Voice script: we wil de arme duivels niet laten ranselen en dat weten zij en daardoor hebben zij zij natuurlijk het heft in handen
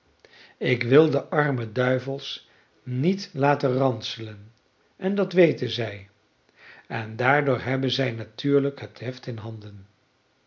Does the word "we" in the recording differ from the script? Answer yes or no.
yes